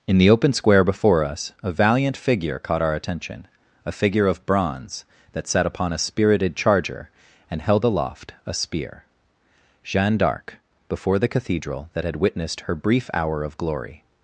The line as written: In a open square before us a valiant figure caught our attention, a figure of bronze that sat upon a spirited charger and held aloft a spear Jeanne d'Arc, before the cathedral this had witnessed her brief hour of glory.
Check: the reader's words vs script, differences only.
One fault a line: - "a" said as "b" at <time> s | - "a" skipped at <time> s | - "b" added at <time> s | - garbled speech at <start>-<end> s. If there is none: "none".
- "a" said as "the" at 0.2 s
- "this" said as "that" at 11.9 s